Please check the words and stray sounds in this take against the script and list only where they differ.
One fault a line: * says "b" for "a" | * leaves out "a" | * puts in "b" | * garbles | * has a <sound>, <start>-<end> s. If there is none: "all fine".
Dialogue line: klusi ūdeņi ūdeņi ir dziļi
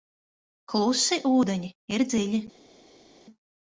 * leaves out "ūdeņi"